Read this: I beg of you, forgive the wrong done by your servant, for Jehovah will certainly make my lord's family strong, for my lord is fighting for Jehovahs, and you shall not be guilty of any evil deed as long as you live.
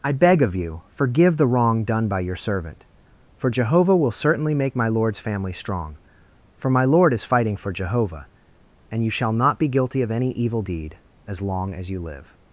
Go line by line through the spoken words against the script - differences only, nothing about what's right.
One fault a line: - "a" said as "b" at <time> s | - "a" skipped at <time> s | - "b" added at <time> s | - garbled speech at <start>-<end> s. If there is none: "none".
- "Jehovahs" said as "Jehovah" at 7.7 s